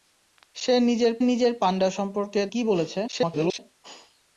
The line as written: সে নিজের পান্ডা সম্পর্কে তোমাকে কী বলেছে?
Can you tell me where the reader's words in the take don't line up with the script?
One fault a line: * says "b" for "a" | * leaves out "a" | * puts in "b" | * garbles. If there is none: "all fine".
* puts in "নিজের"
* leaves out "তোমাকে"
* garbles